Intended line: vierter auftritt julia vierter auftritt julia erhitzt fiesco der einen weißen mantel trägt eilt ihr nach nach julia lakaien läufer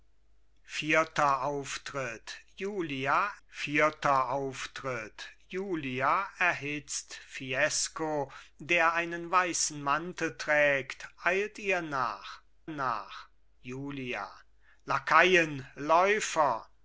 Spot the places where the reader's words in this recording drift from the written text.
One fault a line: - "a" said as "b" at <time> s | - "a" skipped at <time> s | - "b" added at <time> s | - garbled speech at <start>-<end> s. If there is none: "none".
none